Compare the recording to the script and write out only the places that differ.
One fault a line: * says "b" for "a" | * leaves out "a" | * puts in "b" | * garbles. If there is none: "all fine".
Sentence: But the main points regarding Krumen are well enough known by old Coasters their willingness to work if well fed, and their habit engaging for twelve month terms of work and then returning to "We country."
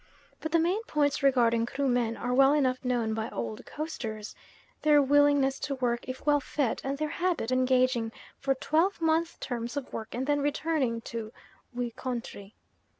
all fine